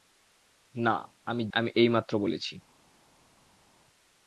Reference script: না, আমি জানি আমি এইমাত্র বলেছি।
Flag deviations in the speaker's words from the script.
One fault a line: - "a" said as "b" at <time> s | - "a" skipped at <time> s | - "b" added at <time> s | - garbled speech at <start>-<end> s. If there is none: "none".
- "জানি" skipped at 1.4 s